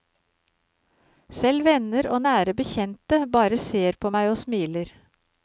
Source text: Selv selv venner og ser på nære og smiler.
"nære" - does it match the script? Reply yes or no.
no